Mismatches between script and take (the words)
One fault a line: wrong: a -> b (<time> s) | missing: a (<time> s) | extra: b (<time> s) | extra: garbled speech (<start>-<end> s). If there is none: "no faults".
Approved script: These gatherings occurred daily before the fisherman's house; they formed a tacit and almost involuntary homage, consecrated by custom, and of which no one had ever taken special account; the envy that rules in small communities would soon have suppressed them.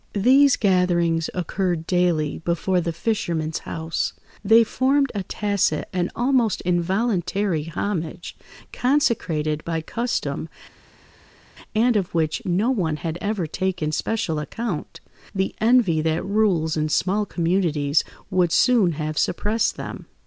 no faults